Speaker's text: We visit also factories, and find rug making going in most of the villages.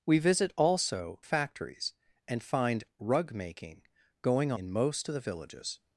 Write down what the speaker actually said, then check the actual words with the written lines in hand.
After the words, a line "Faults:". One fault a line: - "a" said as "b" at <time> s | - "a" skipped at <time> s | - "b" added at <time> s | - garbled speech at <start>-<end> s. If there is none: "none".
We visit also factories, and find rug making going in most of the villages.
Faults:
none